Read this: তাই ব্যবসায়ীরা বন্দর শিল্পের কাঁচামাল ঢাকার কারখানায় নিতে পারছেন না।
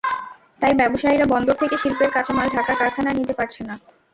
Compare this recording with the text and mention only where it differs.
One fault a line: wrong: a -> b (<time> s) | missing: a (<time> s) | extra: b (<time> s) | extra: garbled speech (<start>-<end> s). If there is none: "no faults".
extra: থেকে (1.6 s)